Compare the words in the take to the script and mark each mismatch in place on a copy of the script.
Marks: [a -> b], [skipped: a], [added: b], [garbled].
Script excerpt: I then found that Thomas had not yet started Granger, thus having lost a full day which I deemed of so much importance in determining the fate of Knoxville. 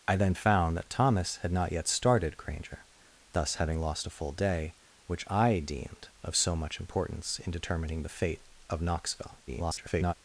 I then found that Thomas had not yet started Granger, thus having lost a full day which I deemed of so much importance in determining the fate of Knoxville. [garbled]